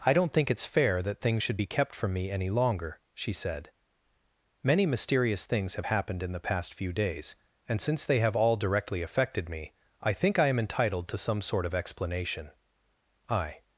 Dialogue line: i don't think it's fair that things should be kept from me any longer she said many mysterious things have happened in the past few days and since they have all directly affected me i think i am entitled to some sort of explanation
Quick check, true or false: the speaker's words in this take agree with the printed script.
false